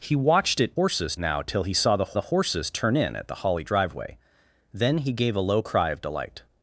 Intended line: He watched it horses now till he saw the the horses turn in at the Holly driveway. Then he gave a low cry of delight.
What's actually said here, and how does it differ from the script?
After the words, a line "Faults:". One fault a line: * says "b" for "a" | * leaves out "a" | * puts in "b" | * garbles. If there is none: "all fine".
He watched it horses now till he saw the the horses turn in at the Holly driveway. Then he gave a low cry of delight.
Faults:
all fine